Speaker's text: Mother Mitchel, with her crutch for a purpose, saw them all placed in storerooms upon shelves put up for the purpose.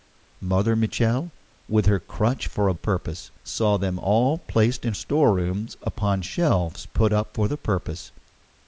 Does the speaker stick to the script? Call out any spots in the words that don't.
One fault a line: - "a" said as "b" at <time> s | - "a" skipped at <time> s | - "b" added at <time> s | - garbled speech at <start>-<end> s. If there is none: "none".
none